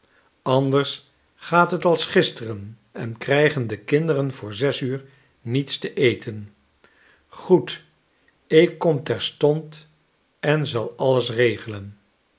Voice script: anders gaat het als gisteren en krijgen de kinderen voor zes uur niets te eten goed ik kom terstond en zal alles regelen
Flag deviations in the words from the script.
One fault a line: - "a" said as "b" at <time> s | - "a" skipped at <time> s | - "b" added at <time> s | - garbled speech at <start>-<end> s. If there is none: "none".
none